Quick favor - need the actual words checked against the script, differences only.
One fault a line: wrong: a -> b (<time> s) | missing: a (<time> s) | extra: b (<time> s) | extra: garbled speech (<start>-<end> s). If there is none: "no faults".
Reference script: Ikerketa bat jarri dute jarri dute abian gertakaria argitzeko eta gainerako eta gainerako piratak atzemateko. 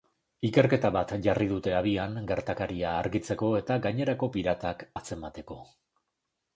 missing: jarri dute (1.8 s)
missing: eta gainerako (4.3 s)